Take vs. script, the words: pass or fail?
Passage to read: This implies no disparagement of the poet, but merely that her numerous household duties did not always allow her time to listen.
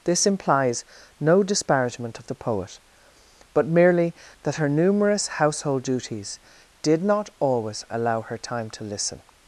pass